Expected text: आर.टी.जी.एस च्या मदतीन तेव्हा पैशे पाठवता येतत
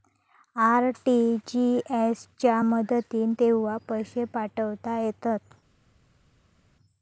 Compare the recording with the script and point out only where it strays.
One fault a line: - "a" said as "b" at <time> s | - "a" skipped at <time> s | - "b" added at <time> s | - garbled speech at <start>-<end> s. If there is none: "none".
none